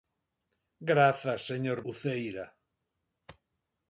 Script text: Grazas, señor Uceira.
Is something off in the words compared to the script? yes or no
no